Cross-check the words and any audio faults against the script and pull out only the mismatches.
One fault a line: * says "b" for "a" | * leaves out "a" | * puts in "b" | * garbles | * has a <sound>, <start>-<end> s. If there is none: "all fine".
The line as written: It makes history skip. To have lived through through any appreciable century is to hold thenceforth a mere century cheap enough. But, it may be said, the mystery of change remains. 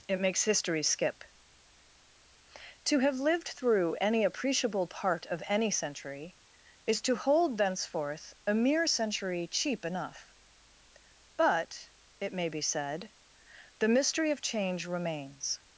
* leaves out "through"
* puts in "part of any"